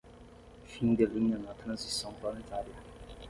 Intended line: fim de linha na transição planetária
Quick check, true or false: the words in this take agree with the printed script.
true